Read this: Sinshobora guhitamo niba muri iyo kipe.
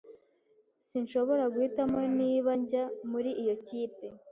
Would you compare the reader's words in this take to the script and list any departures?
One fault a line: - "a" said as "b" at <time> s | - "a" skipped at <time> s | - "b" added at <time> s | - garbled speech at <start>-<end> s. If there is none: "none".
- "njya" added at 2.6 s